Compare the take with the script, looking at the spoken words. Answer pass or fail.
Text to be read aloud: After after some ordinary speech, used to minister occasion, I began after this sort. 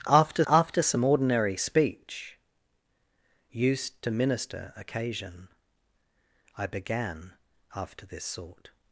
pass